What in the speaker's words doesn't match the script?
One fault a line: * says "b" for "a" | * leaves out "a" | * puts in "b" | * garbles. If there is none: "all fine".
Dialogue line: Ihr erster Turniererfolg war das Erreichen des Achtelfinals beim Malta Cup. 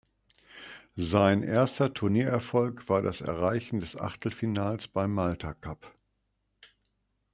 * says "Sein" for "Ihr"